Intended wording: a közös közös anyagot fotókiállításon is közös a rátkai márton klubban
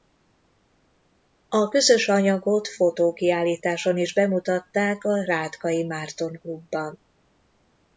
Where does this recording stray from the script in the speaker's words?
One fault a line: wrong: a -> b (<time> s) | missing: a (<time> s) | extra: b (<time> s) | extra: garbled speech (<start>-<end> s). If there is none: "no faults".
missing: közös (2.1 s)
wrong: közös -> bemutatták (4.1 s)